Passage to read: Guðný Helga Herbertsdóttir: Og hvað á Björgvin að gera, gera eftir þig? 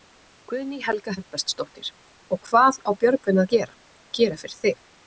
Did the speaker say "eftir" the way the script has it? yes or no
no